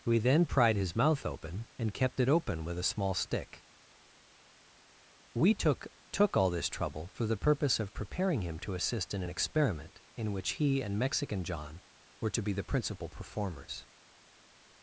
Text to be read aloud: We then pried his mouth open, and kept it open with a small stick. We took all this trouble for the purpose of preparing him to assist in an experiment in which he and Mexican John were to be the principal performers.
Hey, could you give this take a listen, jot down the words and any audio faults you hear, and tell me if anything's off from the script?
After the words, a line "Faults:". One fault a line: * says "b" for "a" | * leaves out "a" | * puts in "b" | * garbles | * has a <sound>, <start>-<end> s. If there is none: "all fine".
We then pried his mouth open, and kept it open with a small stick. We took took all this trouble for the purpose of preparing him to assist in an experiment in which he and Mexican John were to be the principal performers.
Faults:
* puts in "took"